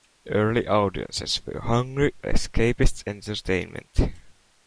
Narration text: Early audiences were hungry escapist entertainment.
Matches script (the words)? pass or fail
pass